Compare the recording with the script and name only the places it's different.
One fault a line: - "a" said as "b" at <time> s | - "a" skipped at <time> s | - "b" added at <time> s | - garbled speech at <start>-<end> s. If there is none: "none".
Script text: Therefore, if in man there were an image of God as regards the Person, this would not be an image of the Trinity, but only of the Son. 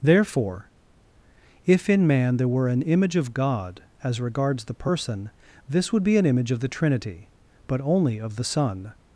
- "not" skipped at 6.0 s